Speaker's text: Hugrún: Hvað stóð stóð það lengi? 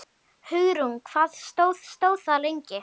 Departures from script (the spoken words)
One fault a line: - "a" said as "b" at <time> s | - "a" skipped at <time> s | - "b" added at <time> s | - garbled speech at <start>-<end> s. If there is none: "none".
none